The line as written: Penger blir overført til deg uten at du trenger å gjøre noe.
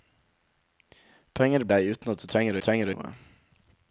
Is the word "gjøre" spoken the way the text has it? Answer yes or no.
no